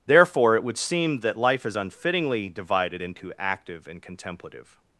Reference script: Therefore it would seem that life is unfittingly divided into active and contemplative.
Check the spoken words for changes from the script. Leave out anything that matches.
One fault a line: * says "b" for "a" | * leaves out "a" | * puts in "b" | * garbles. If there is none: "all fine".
all fine